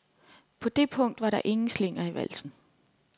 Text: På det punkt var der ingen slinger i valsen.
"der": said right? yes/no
yes